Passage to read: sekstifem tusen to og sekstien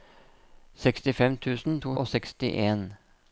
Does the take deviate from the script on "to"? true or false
false